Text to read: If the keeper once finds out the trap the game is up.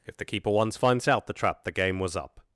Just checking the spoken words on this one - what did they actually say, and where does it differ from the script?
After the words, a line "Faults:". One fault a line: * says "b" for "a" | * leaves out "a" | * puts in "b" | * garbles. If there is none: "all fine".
If the keeper once finds out the trap the game was up.
Faults:
* says "was" for "is"